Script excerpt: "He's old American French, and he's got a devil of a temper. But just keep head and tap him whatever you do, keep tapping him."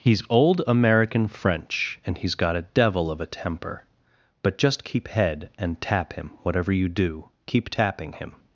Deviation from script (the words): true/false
false